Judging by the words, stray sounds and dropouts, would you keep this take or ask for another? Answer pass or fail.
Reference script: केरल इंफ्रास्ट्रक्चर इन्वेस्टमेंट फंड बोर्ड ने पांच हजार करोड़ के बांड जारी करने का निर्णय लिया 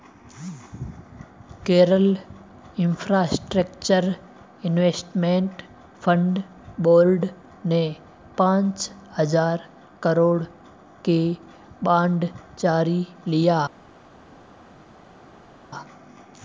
fail